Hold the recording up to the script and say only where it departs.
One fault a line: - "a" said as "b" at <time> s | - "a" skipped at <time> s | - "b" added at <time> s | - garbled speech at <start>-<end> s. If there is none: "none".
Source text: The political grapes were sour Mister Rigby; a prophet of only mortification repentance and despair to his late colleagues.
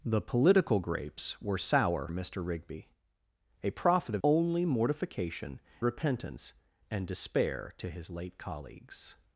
none